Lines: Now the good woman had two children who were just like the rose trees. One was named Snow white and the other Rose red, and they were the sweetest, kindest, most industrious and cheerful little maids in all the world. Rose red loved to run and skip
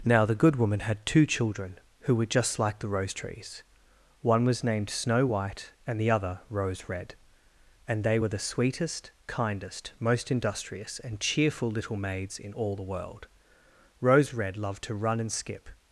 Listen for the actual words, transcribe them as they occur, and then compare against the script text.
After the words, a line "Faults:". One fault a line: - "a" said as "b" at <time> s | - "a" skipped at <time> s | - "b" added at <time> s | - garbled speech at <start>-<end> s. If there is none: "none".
Now the good woman had two children who were just like the rose trees. One was named Snow white and the other Rose red, and they were the sweetest, kindest, most industrious and cheerful little maids in all the world. Rose red loved to run and skip
Faults:
none